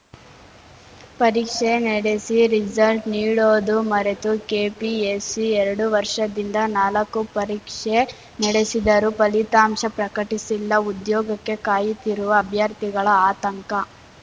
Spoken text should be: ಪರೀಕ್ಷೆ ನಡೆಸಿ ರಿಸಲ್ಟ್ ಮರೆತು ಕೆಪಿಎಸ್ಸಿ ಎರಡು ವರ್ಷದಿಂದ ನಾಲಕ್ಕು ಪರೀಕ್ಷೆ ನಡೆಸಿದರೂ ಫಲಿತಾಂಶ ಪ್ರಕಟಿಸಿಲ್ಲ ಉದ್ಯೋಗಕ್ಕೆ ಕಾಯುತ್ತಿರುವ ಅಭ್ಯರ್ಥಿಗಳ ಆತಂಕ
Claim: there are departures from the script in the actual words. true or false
true